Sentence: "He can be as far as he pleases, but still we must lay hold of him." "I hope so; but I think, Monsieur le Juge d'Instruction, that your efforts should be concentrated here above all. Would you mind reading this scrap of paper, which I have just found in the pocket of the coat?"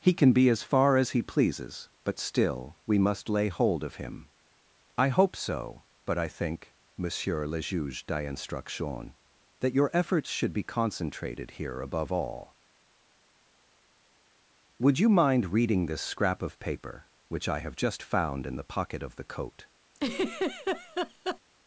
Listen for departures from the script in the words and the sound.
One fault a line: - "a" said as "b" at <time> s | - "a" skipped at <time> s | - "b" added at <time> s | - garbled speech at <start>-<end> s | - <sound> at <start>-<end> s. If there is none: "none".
- laugh at 19.9-21.4 s